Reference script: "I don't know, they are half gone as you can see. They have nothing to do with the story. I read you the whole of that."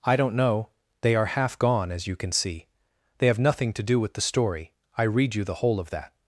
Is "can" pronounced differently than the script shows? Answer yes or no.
no